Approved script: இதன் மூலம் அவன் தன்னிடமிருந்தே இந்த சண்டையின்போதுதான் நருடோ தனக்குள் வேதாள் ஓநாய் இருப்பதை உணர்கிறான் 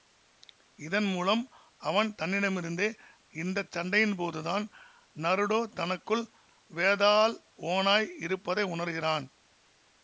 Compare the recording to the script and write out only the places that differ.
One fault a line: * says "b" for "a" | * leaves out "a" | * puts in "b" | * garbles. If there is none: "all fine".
all fine